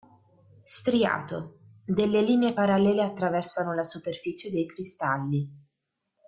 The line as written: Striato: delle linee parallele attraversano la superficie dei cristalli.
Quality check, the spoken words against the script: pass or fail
pass